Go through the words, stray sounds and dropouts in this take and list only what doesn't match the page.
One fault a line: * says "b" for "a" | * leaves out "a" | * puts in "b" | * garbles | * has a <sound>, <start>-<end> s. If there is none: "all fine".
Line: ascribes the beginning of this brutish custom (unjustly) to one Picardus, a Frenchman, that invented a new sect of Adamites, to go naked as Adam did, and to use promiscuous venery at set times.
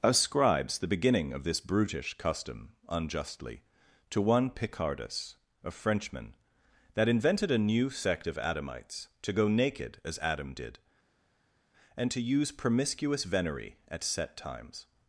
all fine